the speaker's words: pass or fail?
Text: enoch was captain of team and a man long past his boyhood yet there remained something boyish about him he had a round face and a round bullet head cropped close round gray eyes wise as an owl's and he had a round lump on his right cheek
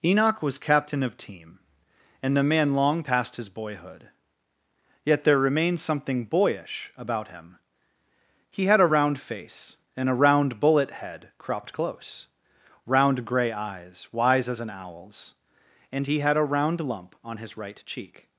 pass